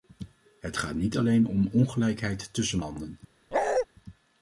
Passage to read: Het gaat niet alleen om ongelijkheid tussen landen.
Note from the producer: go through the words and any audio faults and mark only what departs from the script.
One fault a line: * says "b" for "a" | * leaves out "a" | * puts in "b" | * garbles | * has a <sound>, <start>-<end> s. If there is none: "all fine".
* has a bark, 3.5-3.9 s